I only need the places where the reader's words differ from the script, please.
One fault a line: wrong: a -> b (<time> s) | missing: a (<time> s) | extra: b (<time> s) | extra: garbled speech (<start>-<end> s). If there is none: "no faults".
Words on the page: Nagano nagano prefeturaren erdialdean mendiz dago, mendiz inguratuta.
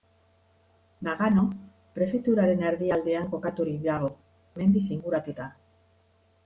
missing: nagano (1.4 s)
wrong: mendiz -> kokaturik (3.3 s)